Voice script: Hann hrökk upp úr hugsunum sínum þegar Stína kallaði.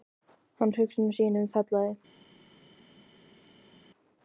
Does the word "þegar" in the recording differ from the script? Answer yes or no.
yes